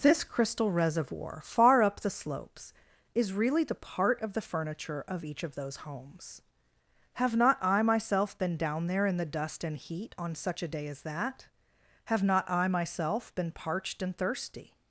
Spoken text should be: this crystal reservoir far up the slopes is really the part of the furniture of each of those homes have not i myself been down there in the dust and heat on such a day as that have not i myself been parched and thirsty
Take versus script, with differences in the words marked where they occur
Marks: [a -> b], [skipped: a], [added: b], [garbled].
this crystal reservoir far up the slopes is really the part of the furniture of each of those homes have not i myself been down there in the dust and heat on such a day as that have not i myself been parched and thirsty